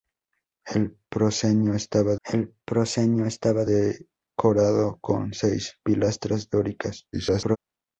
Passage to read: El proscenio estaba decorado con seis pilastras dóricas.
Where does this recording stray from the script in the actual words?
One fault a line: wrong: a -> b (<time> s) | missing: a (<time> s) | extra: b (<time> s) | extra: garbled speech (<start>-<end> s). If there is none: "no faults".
extra: el proscenio estaba (2.2 s)
extra: garbled speech (7.1-7.6 s)